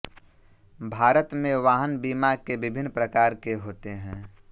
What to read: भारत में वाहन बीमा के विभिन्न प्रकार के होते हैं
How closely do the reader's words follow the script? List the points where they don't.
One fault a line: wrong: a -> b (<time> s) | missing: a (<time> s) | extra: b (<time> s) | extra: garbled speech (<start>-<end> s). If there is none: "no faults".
no faults